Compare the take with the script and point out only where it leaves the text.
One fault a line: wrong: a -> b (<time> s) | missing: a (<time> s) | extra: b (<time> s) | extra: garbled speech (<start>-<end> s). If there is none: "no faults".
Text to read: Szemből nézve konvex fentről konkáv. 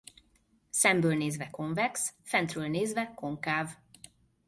extra: nézve (2.7 s)